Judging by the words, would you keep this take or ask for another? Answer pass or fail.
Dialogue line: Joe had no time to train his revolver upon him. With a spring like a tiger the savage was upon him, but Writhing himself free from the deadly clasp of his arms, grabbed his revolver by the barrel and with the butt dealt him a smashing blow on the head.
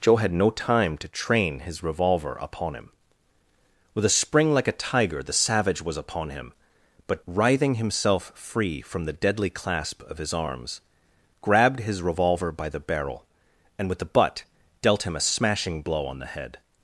pass